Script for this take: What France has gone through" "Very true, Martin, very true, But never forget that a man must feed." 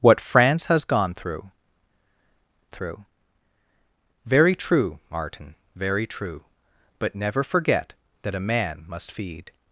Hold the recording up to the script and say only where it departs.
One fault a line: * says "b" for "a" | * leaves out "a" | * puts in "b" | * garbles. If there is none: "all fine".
* puts in "through"